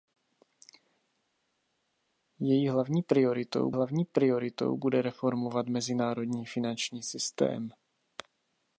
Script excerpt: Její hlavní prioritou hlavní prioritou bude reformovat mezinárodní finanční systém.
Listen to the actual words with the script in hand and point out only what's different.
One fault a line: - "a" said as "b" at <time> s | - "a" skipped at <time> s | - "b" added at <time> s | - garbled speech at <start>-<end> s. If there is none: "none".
none